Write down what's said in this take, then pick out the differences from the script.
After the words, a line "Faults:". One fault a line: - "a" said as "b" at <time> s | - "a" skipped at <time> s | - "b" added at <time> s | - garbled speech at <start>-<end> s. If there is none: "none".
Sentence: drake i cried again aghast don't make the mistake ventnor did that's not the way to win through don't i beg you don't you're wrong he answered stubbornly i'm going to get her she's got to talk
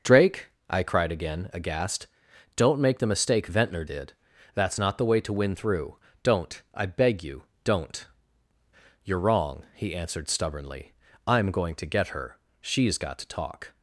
drake i cried again aghast don't make the mistake ventnor did that's not the way to win through don't i beg you don't you're wrong he answered stubbornly i'm going to get her she's got to talk
Faults:
none